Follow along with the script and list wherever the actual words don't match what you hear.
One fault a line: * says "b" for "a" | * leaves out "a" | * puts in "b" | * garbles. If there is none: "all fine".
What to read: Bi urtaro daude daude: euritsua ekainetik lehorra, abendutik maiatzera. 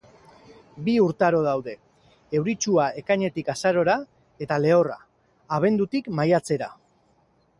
* leaves out "daude"
* puts in "azarora eta"